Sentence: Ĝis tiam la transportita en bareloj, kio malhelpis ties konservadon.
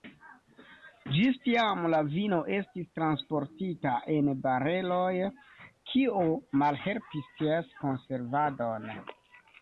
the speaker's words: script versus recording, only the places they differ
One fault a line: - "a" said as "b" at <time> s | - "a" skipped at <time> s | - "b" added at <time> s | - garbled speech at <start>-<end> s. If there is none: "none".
- "vino estis" added at 2.1 s